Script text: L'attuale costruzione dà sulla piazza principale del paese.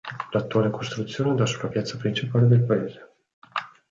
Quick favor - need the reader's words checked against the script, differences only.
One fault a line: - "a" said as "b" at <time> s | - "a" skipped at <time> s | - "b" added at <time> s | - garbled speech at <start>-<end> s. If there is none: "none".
none